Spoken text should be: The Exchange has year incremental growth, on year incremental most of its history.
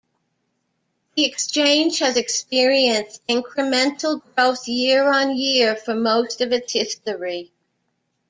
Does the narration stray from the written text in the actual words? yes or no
yes